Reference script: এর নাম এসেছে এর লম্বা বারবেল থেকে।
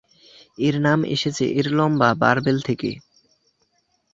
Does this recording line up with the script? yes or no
yes